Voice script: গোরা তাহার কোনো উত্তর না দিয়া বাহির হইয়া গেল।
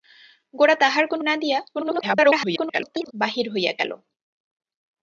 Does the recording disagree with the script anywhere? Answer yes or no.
yes